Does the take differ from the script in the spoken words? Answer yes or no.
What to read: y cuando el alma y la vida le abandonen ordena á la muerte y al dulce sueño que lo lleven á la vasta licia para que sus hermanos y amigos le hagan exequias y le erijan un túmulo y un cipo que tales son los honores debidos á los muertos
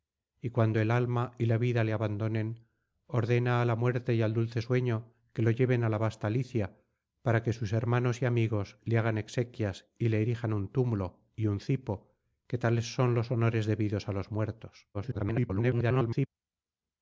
yes